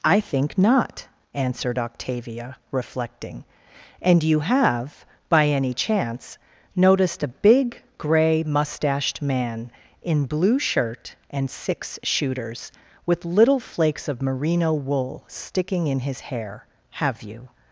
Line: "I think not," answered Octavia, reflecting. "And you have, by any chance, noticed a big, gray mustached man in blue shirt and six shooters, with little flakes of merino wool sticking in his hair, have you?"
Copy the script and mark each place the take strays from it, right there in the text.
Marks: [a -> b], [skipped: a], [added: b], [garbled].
"I think not," answered Octavia, reflecting. "And you have, by any chance, noticed a big, gray mustached man in blue shirt and six shooters, with little flakes of merino wool sticking in his hair, have you?"